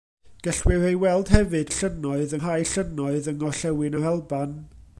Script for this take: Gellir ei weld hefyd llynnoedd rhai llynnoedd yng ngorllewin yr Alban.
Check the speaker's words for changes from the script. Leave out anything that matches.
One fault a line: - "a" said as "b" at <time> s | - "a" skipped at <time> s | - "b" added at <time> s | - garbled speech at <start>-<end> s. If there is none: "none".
none